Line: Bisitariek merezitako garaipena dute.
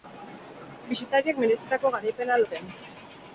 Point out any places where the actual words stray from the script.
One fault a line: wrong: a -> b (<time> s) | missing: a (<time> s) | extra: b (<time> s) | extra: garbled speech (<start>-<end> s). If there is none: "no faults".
no faults